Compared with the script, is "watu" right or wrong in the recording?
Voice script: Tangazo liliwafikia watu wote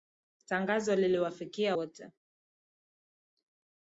wrong